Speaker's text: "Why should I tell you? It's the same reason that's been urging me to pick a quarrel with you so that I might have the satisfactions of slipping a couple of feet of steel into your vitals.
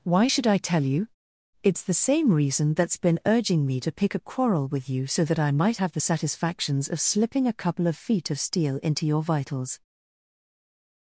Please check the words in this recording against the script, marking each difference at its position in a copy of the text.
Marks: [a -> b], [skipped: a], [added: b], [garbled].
"Why should I tell you? It's the same reason that's been urging me to pick a quarrel with you so that I might have the satisfactions of slipping a couple of feet of steel into your vitals.